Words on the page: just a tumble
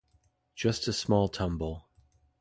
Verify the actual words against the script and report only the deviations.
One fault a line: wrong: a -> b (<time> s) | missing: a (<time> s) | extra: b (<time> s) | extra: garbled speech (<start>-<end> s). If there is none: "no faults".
extra: small (0.9 s)